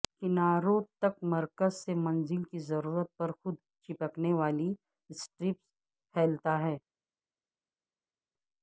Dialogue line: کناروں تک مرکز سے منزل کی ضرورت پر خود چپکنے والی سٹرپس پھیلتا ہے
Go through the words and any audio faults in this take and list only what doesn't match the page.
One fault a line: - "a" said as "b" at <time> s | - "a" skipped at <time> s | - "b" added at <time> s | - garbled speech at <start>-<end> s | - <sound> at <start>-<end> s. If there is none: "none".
none